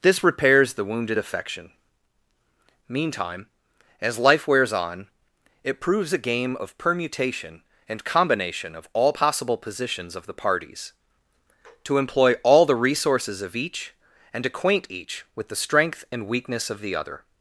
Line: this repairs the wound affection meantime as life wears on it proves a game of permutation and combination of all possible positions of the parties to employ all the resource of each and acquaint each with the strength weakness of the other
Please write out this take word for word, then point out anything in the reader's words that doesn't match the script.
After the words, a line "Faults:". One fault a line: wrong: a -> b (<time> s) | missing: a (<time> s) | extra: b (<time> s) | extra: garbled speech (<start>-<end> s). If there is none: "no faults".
this repairs the wounded affection meantime as life wears on it proves a game of permutation and combination of all possible positions of the parties to employ all the resources of each and acquaint each with the strength and weakness of the other
Faults:
wrong: wound -> wounded (0.8 s)
wrong: resource -> resources (12.7 s)
extra: and (16.1 s)